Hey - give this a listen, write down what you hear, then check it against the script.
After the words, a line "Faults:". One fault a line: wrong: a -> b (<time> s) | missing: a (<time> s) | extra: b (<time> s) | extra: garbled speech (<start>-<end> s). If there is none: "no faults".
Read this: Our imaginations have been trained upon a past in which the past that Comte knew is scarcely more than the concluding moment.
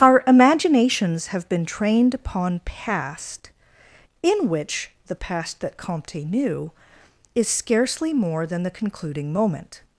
Our imaginations have been trained upon past in which the past that Comte knew is scarcely more than the concluding moment.
Faults:
missing: a (2.6 s)